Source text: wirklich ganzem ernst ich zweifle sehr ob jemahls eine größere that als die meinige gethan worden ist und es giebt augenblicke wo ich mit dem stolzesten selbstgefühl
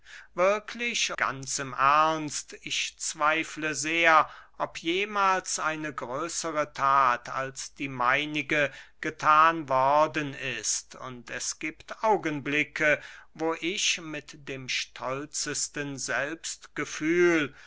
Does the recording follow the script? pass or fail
pass